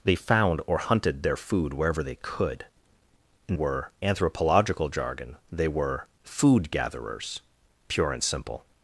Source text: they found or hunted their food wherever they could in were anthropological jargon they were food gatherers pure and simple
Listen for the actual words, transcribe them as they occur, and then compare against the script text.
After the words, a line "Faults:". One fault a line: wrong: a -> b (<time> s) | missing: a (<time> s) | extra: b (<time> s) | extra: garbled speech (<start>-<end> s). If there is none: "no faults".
they found or hunted their food wherever they could in were anthropological jargon they were food gatherers pure and simple
Faults:
no faults